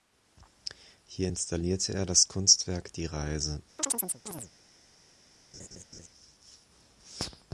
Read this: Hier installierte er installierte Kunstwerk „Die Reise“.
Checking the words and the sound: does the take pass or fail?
fail